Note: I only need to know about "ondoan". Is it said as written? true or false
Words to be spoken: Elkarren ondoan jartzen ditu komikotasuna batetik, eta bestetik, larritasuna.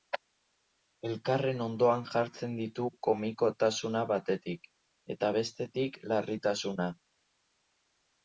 true